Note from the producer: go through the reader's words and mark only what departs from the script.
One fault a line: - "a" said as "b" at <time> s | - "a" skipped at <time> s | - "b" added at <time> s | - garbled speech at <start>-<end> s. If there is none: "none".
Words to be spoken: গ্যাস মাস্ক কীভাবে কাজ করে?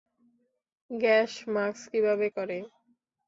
- "কাজ" skipped at 2.3 s